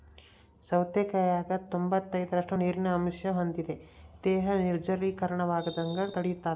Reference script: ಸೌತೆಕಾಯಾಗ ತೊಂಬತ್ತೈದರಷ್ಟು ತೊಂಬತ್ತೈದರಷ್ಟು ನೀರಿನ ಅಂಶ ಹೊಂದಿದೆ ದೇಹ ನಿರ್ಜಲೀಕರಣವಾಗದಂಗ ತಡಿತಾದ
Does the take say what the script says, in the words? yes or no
no